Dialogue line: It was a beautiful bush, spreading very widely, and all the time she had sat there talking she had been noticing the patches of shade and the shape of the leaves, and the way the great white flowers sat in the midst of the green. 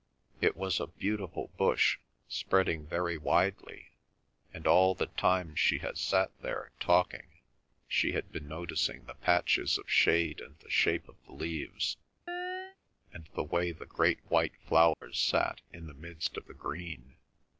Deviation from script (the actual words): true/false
false